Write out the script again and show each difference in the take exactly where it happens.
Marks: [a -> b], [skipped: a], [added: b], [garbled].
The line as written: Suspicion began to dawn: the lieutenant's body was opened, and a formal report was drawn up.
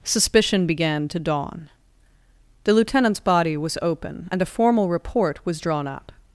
Suspicion began to dawn: the lieutenant's body was [opened, -> open] and a formal report was drawn up.